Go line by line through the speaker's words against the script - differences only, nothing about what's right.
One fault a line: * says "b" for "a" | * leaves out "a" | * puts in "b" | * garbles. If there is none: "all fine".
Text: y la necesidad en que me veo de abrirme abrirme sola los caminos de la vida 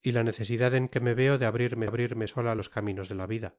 all fine